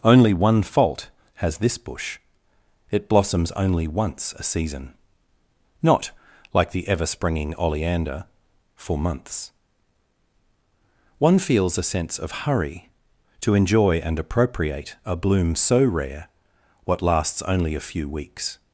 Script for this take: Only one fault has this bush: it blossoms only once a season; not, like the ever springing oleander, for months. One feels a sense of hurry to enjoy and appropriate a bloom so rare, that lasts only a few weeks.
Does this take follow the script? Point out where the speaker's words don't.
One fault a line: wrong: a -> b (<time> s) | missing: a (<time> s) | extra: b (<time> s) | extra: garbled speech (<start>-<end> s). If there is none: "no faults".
wrong: that -> what (16.9 s)